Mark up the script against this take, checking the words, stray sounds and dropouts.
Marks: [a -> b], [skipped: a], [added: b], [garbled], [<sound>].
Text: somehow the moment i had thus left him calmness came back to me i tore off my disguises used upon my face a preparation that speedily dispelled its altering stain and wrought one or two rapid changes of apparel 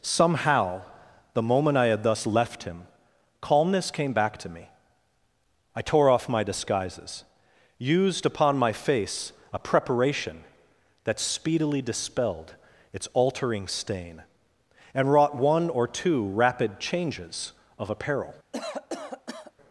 somehow the moment i had thus left him calmness came back to me i tore off my disguises used upon my face a preparation that speedily dispelled its altering stain and wrought one or two rapid changes of apparel [cough]